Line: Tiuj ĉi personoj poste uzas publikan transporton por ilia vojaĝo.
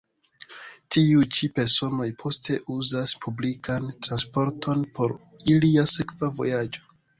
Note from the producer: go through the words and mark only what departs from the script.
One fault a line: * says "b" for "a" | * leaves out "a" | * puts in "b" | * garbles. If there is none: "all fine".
* puts in "sekva"